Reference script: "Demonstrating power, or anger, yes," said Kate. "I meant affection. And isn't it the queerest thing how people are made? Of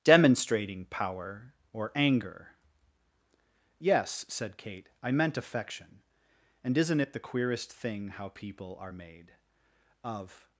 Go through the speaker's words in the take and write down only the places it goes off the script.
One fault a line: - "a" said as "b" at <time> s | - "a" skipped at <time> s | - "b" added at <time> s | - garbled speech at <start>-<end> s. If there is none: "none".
none